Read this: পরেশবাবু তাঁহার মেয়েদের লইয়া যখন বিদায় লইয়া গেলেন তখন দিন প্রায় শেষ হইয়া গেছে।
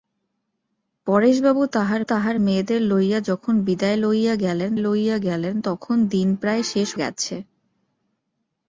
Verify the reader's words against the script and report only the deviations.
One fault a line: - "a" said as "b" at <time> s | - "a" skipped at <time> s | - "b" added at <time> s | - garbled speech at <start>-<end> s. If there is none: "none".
- "তাঁহার" added at 2.0 s
- "লইয়া গেলেন" added at 4.8 s
- "হইয়া" skipped at 6.9 s